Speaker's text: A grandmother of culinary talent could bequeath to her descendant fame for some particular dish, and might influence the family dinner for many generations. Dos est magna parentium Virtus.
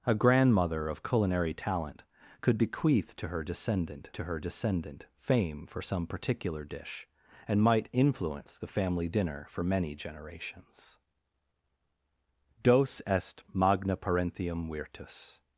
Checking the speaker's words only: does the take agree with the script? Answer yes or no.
no